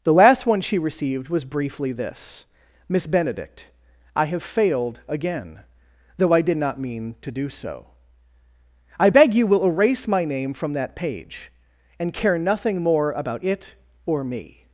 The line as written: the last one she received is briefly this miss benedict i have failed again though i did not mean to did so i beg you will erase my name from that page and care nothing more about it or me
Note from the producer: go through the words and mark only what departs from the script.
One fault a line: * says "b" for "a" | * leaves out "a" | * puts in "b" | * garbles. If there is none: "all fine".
* says "was" for "is"
* says "do" for "did"